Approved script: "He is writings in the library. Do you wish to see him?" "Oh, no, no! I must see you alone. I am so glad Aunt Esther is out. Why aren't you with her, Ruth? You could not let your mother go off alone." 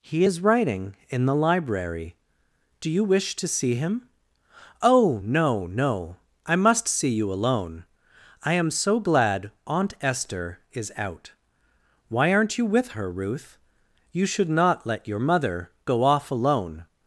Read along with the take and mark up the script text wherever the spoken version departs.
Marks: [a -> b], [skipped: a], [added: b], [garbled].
"He is [writings -> writing] in the library. Do you wish to see him?" "Oh, no, no! I must see you alone. I am so glad Aunt Esther is out. Why aren't you with her, Ruth? You [could -> should] not let your mother go off alone."